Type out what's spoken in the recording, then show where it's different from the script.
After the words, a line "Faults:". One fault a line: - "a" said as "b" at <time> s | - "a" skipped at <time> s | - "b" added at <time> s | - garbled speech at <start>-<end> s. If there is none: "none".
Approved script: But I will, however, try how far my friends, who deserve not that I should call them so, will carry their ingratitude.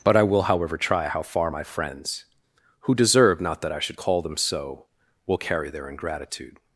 But I will, however, try how far my friends, who deserve not that I should call them so, will carry their ingratitude.
Faults:
none